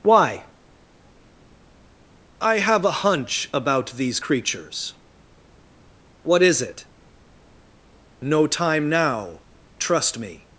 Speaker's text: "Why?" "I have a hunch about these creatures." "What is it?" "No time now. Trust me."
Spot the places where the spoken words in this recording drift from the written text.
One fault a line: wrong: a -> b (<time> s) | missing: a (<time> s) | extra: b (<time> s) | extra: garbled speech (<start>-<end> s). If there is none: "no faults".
no faults